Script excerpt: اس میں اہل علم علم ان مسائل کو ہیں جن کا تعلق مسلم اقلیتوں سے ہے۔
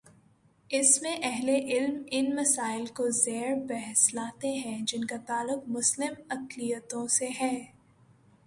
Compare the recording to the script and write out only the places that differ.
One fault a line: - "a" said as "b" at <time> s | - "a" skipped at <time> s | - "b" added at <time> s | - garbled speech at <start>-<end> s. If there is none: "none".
- "علم" skipped at 2.0 s
- "زیر بحث لاتے" added at 3.1 s